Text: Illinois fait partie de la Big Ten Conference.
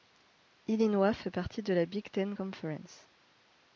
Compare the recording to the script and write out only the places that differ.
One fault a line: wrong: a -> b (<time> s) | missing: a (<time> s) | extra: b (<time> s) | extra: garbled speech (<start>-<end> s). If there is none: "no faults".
no faults